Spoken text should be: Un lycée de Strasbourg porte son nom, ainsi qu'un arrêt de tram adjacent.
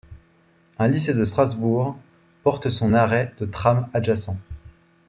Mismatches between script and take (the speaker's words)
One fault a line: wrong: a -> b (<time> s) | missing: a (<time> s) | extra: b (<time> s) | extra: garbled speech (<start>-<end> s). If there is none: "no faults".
missing: nom ainsi qu'un (2.9 s)